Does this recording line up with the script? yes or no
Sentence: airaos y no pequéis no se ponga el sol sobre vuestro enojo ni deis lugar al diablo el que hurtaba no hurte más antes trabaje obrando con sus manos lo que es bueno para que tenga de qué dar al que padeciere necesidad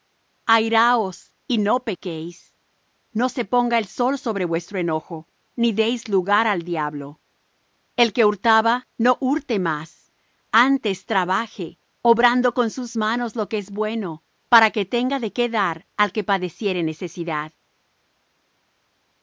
yes